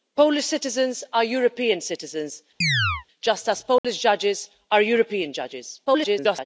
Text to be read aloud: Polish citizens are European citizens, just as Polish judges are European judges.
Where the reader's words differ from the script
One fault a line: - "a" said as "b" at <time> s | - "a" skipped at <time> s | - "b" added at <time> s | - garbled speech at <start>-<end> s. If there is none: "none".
- garbled speech at 5.9-6.5 s